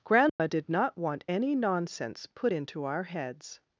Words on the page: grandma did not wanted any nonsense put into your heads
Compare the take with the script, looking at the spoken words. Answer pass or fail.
fail